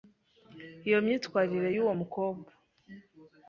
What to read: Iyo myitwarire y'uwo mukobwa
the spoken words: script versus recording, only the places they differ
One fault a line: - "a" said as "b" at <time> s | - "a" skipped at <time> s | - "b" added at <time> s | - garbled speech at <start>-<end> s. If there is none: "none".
none